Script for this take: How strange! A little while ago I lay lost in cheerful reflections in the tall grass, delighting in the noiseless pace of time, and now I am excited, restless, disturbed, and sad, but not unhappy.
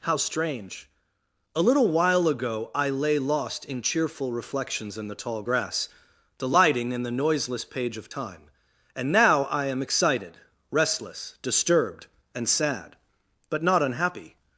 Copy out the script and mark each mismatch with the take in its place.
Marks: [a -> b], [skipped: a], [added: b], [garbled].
How strange! A little while ago I lay lost in cheerful reflections in the tall grass, delighting in the noiseless [pace -> page] of time, and now I am excited, restless, disturbed, and sad, but not unhappy.